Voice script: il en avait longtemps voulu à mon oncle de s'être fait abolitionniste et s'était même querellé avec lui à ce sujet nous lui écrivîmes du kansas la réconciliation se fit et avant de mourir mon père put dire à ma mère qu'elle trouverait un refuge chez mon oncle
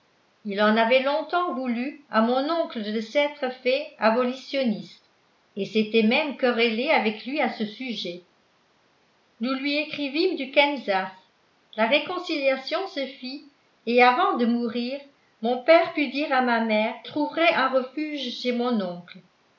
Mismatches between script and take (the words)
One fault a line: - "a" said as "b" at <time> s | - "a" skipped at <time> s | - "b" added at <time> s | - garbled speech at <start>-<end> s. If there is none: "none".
- "qu'elle" skipped at 16.9 s